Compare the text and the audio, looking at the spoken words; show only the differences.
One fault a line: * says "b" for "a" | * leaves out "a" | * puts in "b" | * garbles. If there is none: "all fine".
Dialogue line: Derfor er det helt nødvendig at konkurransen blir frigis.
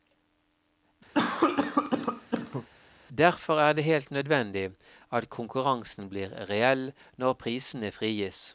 * puts in "reell når prisene"